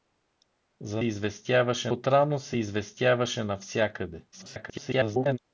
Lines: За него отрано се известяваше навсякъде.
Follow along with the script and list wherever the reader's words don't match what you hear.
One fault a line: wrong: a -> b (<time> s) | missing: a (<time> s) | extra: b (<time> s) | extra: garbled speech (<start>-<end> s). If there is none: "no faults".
wrong: него -> известяваше (1.0 s)
extra: garbled speech (4.3-5.4 s)